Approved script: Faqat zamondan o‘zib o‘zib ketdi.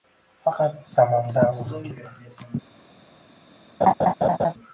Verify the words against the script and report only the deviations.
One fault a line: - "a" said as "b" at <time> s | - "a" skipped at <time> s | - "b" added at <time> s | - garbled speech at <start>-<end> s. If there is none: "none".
- "o‘zib" skipped at 1.9 s